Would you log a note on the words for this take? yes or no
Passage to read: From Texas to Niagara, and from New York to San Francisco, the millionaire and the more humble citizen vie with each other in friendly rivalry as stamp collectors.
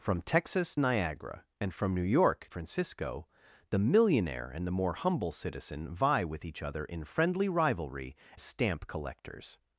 yes